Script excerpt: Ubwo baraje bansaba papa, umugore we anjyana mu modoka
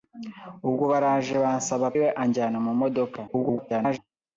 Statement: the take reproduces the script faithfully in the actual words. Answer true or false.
false